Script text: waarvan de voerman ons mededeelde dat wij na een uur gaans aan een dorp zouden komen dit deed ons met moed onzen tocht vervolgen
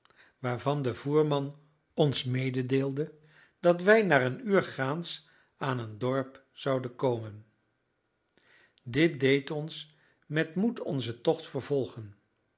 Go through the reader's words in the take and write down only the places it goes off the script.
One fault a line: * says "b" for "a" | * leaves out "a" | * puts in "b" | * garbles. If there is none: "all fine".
all fine